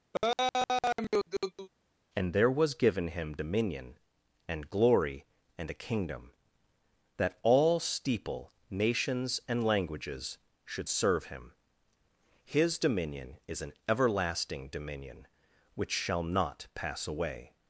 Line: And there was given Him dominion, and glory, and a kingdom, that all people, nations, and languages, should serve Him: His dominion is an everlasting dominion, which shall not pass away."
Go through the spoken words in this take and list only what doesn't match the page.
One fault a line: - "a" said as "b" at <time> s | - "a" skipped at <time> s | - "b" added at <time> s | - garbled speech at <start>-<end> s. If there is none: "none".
- "people" said as "steeple" at 7.8 s